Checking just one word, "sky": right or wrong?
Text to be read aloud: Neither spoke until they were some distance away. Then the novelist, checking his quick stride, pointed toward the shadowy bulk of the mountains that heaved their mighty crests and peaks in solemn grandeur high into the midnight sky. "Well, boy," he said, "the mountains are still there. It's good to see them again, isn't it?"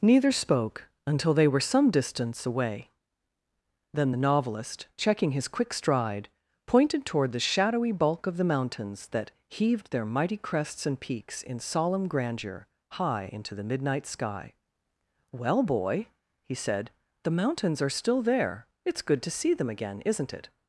right